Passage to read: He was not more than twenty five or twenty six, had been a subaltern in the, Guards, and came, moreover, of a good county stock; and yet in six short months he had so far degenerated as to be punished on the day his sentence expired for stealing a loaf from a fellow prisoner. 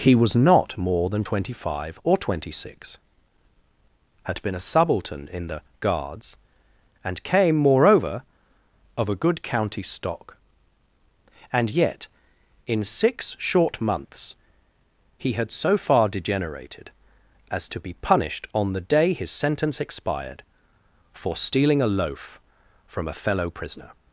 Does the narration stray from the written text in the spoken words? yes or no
no